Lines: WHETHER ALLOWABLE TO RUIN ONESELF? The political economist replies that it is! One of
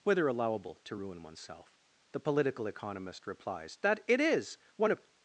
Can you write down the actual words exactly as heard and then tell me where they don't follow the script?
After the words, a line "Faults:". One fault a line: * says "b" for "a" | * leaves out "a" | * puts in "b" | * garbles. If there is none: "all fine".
WHETHER ALLOWABLE TO RUIN ONESELF? The political economist replies that it is! One of
Faults:
all fine